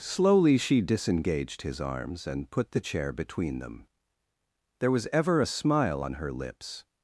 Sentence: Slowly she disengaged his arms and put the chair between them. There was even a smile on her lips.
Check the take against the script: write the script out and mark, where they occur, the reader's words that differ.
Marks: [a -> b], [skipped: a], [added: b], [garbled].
Slowly she disengaged his arms and put the chair between them. There was [even -> ever] a smile on her lips.